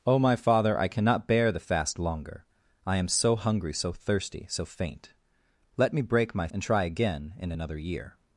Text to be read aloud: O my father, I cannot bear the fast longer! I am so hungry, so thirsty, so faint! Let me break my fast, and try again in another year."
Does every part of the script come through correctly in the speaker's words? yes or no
no